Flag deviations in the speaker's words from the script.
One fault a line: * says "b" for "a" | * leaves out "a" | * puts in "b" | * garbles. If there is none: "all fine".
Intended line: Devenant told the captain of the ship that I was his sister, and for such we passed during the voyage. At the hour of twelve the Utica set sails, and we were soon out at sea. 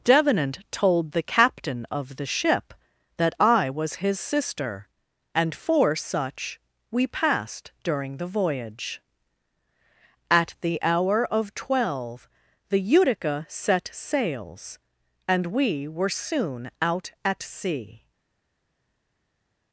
all fine